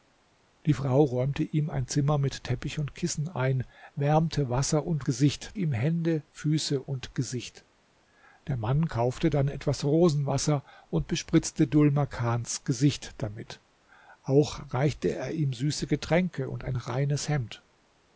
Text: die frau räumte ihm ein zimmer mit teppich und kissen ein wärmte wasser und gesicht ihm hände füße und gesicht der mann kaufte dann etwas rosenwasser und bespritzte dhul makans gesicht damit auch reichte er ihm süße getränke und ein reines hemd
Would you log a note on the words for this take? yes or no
no